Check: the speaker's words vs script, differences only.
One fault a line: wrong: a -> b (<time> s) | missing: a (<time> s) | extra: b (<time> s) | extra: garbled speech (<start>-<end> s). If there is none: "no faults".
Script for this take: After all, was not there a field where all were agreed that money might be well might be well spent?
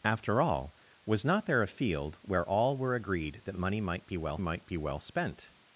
no faults